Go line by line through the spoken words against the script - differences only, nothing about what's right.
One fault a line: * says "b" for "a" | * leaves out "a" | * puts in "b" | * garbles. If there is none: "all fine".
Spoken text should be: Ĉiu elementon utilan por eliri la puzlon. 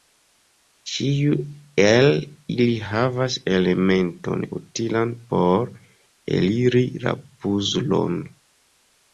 * puts in "el ili havas"